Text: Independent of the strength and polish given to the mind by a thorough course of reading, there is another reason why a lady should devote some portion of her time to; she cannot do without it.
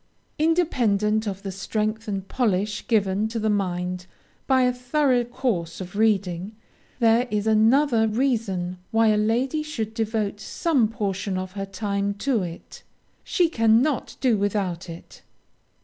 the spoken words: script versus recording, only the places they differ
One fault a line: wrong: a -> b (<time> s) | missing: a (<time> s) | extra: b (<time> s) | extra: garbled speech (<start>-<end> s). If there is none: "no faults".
extra: it (12.4 s)